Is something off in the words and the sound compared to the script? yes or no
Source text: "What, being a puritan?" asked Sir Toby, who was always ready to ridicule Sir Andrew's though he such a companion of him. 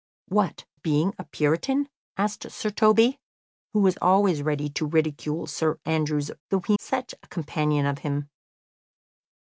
no